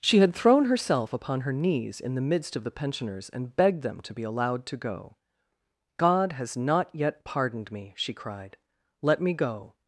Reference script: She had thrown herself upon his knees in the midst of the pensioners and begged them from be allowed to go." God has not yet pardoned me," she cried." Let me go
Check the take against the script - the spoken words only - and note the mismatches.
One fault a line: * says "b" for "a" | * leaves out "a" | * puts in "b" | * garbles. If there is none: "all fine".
* says "her" for "his"
* says "to" for "from"